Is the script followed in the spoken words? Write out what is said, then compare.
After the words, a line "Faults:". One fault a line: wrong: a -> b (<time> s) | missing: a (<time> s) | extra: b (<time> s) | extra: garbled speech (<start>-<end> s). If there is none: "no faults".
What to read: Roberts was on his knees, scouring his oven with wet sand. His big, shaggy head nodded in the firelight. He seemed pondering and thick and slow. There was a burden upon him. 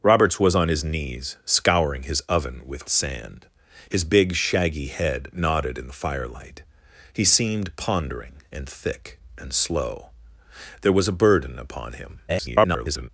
Roberts was on his knees, scouring his oven with sand. His big, shaggy head nodded in the firelight. He seemed pondering and thick and slow. There was a burden upon him. [garbled]
Faults:
missing: wet (2.9 s)
extra: garbled speech (12.3-13.1 s)